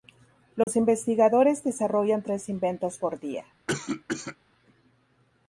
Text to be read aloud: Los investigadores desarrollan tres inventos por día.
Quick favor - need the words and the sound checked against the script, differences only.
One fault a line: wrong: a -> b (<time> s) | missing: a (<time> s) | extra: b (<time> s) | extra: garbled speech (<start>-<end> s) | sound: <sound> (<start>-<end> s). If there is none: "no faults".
sound: dropout (0.6-0.7 s)
sound: cough (3.7-4.4 s)